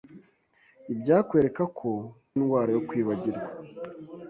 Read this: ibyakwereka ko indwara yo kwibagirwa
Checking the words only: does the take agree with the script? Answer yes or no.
yes